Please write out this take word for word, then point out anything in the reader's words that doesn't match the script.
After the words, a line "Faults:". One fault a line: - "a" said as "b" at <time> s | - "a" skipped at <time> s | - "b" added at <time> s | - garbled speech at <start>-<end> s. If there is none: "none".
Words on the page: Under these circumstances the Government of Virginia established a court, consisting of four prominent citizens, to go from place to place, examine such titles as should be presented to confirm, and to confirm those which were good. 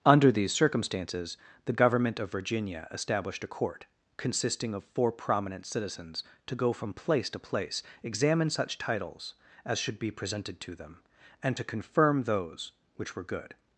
Under these circumstances the Government of Virginia established a court, consisting of four prominent citizens, to go from place to place, examine such titles as should be presented to them, and to confirm those which were good.
Faults:
- "confirm" said as "them" at 10.7 s